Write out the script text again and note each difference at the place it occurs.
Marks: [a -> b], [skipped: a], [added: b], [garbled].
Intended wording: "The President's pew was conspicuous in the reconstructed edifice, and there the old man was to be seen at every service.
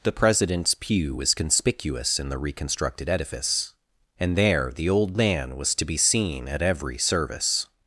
"The President's pew was conspicuous in the reconstructed edifice, and there the old man was to be seen at every service.